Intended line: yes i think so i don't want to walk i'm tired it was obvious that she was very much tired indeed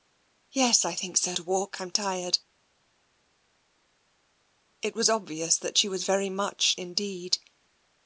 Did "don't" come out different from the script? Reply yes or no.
yes